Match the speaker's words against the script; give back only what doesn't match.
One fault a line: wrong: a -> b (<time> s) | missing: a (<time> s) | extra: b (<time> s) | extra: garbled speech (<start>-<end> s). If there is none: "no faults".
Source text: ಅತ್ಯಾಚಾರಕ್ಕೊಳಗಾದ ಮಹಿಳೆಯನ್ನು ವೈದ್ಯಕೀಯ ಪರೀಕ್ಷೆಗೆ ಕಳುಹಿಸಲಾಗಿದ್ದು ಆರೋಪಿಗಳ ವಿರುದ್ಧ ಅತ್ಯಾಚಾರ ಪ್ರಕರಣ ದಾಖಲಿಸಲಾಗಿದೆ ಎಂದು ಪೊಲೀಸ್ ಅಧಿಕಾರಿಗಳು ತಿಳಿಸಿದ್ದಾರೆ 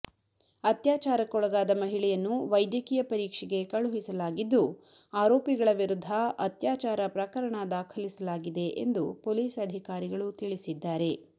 no faults